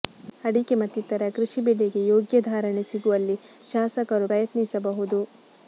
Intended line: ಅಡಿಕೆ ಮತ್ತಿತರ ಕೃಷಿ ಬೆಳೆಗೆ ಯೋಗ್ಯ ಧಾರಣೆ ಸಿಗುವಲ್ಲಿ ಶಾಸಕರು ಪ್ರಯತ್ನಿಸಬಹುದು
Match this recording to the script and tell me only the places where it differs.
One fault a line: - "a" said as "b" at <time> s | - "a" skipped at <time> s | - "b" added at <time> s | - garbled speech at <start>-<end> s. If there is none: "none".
none